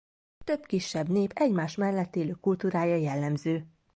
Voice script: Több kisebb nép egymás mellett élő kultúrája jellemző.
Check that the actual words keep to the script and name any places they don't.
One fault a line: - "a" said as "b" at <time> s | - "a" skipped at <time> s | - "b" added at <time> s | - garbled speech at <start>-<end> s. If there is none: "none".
none